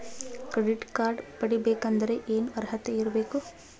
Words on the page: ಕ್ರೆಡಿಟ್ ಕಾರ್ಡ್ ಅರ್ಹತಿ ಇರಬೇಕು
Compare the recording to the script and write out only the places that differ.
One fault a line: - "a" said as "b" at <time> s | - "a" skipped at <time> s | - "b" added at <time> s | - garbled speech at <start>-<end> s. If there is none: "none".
- "ಪಡಿಬೇಕಂದರ ಏನ" added at 1.4 s